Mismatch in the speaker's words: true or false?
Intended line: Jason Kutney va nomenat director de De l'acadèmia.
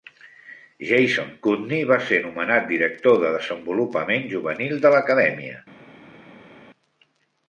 true